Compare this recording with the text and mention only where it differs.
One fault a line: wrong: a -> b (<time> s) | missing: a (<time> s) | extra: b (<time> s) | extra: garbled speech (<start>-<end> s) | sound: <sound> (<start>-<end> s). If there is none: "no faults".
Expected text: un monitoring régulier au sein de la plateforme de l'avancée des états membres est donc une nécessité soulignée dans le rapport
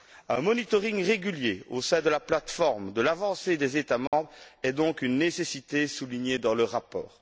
sound: dropout (4.1-4.1 s)